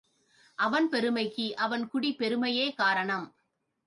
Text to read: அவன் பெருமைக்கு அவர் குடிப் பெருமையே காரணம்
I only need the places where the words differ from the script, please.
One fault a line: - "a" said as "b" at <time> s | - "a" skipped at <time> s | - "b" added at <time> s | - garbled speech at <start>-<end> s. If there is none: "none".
- "அவர்" said as "அவன்" at 1.6 s